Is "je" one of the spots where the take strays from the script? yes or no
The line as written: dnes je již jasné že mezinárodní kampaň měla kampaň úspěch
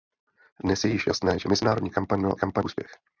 no